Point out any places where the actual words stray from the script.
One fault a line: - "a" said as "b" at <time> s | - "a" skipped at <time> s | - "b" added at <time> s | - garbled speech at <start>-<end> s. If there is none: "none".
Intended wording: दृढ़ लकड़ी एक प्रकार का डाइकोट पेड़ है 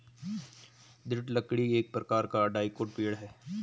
none